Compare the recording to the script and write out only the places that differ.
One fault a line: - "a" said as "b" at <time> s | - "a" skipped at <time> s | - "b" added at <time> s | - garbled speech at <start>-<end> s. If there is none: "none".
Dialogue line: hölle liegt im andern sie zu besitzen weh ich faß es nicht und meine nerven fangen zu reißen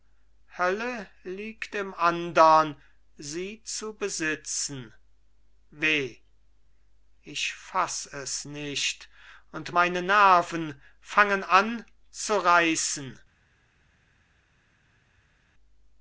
- "an" added at 11.4 s